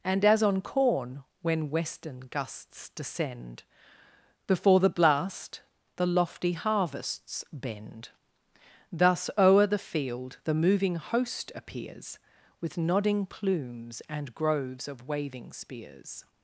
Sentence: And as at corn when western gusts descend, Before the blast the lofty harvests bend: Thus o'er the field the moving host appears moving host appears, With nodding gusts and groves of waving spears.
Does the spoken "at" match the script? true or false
false